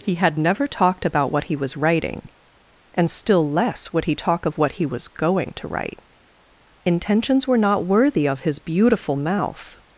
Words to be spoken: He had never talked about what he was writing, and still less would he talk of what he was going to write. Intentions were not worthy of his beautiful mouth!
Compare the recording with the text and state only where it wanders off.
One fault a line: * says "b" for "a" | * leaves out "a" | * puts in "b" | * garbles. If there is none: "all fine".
all fine